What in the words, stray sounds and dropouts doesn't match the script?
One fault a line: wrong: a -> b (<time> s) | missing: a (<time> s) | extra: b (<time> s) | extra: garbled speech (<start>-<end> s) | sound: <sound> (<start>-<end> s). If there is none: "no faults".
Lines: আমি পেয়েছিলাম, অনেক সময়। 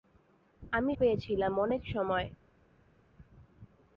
no faults